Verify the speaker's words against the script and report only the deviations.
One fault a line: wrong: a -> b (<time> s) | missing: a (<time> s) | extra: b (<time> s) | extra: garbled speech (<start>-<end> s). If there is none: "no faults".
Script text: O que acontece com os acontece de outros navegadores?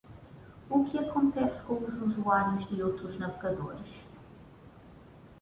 wrong: acontece -> usuários (2.0 s)